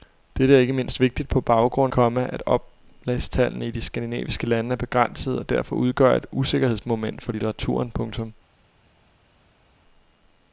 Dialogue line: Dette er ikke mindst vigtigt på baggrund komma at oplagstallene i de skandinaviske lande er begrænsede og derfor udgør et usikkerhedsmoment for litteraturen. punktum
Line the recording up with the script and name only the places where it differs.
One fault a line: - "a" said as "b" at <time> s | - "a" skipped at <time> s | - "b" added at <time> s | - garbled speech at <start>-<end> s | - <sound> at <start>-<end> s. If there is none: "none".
none